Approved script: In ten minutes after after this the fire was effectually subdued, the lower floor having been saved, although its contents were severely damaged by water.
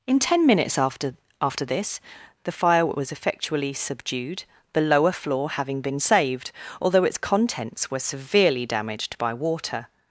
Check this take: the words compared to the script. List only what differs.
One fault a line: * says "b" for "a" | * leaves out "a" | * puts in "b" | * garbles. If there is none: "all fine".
all fine